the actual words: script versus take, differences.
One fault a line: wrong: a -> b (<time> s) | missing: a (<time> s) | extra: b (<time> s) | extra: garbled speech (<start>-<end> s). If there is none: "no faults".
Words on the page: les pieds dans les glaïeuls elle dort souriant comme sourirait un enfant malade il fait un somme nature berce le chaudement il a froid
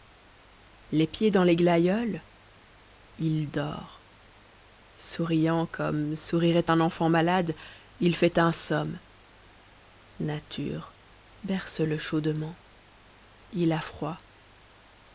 wrong: elle -> il (3.2 s)